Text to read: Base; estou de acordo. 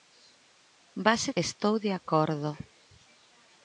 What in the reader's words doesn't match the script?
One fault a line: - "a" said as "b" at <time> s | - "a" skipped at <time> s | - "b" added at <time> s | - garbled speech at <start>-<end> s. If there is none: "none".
none